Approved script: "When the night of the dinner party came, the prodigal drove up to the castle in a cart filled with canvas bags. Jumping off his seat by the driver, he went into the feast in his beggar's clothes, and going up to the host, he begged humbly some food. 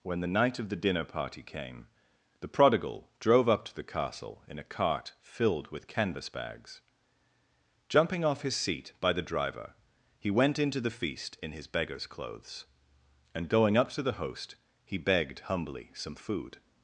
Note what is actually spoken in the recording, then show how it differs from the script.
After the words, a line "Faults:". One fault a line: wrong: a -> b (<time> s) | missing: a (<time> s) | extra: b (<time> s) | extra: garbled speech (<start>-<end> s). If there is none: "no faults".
"When the night of the dinner party came, the prodigal drove up to the castle in a cart filled with canvas bags. Jumping off his seat by the driver, he went into the feast in his beggar's clothes, and going up to the host, he begged humbly some food.
Faults:
no faults